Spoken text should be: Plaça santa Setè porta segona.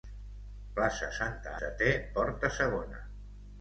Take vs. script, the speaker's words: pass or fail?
pass